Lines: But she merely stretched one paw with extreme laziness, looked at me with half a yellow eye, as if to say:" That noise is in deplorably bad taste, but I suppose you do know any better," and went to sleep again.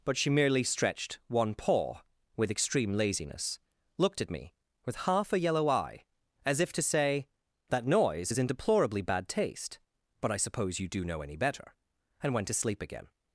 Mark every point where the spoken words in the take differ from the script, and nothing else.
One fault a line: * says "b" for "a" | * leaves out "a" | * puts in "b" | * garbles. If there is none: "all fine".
all fine